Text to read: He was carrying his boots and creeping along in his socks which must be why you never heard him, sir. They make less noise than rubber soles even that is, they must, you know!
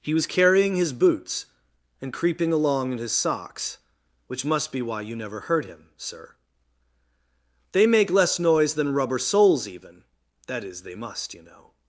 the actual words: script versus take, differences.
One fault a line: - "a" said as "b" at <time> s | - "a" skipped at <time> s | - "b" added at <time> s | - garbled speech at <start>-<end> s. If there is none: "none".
none